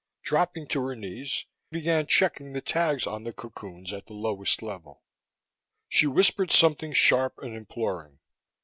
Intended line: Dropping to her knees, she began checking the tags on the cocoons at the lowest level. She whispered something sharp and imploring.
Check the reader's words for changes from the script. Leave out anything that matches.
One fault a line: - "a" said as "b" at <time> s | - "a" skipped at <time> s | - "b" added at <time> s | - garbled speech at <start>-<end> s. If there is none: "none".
- "she" skipped at 1.4 s